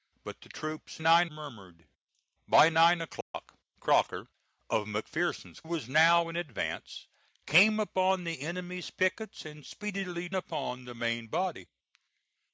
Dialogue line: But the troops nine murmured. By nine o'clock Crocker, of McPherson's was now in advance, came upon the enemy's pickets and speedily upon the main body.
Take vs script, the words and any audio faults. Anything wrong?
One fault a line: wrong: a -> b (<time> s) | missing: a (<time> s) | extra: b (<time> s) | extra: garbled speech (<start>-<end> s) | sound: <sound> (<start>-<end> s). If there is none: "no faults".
sound: dropout (3.2-3.3 s)